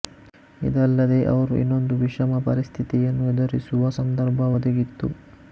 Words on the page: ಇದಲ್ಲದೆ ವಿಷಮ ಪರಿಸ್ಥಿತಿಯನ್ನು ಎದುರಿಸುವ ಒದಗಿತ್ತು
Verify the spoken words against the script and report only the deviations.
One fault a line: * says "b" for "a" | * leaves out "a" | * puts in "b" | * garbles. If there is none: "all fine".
* puts in "ಅವರು ಇನ್ನೊಂದು"
* puts in "ಸಂದರ್ಭ"